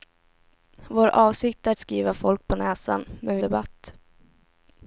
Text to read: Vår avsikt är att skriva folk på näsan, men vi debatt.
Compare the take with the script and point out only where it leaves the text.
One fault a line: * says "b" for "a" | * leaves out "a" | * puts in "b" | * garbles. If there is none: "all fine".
all fine